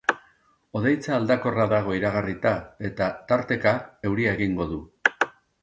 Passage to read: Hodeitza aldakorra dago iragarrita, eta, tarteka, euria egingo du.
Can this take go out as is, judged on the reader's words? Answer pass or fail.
pass